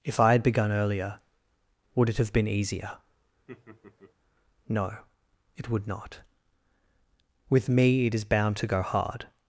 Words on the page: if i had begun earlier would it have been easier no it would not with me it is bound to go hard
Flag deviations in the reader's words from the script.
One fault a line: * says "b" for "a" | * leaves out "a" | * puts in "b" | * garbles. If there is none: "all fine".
all fine